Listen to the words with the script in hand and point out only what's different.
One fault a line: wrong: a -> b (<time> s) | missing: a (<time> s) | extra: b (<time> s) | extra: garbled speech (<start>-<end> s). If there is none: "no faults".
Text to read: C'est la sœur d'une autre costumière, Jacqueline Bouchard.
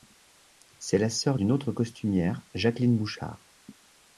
no faults